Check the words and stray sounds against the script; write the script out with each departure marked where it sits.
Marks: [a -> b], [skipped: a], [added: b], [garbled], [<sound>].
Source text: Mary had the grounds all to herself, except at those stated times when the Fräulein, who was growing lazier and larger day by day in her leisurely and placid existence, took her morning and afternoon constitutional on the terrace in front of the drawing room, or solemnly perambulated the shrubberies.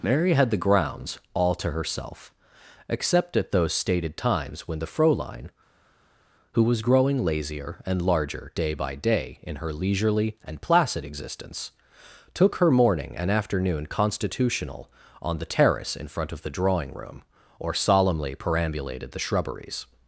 Mary had the grounds all to herself, except at those stated times when the Fräulein, who was growing lazier and larger day by day in her leisurely and placid existence, took her morning and afternoon constitutional on the terrace in front of the drawing room, or solemnly perambulated the shrubberies.